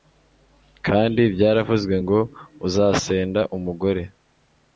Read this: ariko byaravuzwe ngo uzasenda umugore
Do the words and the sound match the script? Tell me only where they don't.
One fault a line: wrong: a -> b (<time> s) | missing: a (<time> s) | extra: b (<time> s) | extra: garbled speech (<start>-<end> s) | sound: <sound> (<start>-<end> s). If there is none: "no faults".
wrong: ariko -> kandi (0.9 s)